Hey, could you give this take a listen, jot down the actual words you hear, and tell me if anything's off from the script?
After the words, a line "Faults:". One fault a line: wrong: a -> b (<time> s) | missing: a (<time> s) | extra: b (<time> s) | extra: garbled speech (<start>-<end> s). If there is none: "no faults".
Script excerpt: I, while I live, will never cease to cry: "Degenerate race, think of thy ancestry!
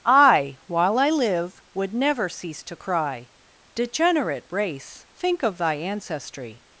I, while I live, would never cease to cry: "Degenerate race, think of thy ancestry!
Faults:
wrong: will -> would (1.7 s)